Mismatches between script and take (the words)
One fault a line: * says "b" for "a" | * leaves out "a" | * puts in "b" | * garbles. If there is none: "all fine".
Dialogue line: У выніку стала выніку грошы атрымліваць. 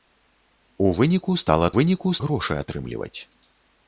all fine